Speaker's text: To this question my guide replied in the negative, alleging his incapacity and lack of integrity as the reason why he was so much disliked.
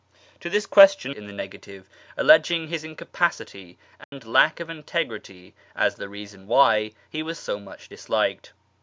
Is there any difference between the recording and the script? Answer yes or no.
yes